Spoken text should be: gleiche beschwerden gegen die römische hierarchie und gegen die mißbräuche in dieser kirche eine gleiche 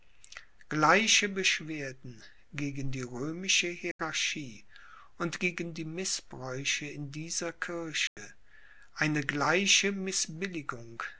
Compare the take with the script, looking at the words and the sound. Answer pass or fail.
fail